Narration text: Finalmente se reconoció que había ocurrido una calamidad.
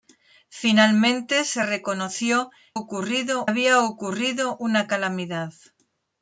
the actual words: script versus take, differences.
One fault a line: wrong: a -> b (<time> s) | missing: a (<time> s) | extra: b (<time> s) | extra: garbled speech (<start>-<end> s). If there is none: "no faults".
wrong: que -> ocurrido (2.7 s)